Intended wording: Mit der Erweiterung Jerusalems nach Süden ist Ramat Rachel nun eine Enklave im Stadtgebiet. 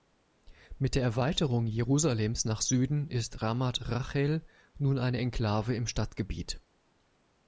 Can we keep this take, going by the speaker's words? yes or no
yes